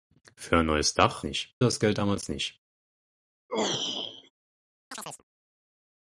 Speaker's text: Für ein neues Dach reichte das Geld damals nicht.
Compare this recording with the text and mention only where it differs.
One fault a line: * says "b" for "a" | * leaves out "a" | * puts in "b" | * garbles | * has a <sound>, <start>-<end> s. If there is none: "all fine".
* says "nicht" for "reichte"
* has a throat clearing, 3.5-4.3 s
* has a chirp, 4.9-5.2 s